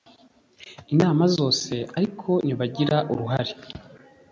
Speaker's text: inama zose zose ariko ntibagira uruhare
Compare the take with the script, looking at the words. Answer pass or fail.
fail